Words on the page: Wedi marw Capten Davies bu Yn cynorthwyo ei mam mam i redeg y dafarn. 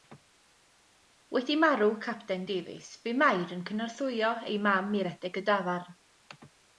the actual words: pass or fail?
fail